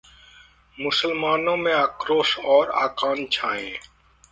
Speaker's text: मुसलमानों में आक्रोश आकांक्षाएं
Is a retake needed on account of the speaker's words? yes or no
yes